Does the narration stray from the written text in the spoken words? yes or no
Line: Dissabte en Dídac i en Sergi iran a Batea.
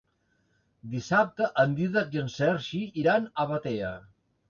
no